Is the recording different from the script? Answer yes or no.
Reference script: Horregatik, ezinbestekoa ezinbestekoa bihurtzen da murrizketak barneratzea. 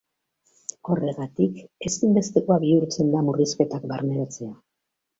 yes